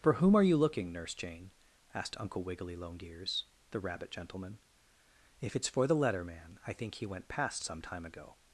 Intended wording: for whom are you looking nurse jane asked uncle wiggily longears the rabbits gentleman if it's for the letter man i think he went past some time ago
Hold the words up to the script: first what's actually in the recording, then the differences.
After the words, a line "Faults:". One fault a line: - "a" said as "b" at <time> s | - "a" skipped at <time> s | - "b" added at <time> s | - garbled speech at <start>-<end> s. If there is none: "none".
for whom are you looking nurse jane asked uncle wiggily longears the rabbit gentleman if it's for the letter man i think he went past some time ago
Faults:
- "rabbits" said as "rabbit" at 3.8 s